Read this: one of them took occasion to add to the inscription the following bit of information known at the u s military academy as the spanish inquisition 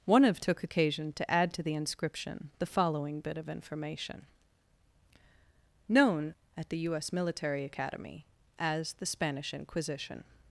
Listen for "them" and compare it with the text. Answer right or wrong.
wrong